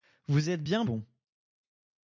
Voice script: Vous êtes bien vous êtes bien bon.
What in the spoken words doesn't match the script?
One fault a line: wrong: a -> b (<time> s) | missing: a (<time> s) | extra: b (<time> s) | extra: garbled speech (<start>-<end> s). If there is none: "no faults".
missing: vous êtes bien (0.8 s)